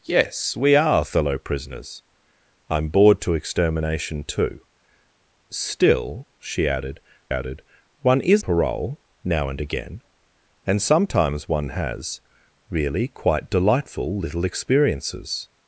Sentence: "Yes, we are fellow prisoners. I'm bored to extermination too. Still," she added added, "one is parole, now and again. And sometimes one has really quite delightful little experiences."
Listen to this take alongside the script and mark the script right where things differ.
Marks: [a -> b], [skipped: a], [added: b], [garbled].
"Yes, we are fellow prisoners. I'm bored to extermination too. Still," she added added, "one is parole, now and again. And sometimes one has really quite delightful little experiences."